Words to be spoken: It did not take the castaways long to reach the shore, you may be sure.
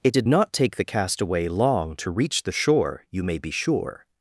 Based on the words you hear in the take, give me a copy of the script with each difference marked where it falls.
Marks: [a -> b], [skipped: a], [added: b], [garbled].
It did not take the [castaways -> castaway] long to reach the shore, you may be sure.